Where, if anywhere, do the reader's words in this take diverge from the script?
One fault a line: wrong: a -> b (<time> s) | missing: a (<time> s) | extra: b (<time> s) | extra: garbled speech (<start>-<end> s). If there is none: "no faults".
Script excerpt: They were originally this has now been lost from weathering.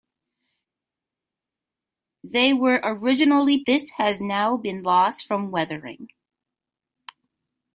no faults